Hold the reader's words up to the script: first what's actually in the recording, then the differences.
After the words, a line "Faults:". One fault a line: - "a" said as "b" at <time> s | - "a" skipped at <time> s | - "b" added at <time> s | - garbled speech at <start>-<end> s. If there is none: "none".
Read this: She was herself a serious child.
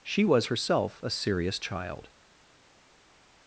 She was herself a serious child.
Faults:
none